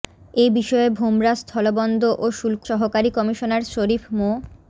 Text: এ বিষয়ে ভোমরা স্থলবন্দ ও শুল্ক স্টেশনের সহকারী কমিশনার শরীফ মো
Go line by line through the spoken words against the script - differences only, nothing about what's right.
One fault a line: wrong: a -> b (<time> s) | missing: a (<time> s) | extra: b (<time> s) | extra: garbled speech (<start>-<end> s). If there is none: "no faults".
missing: স্টেশনের (2.6 s)